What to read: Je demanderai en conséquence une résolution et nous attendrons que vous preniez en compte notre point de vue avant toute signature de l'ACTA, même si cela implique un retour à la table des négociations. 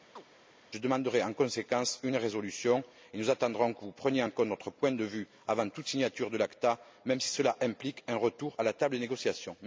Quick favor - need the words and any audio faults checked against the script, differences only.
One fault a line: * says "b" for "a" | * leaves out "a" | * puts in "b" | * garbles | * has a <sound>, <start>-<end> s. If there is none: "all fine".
* has a chirp, 0.2-0.3 s